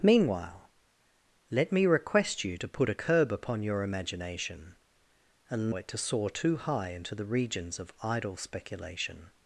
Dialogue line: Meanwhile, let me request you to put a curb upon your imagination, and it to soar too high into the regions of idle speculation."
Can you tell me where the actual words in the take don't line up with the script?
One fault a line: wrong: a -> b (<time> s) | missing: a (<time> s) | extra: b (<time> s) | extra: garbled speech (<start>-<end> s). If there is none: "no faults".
no faults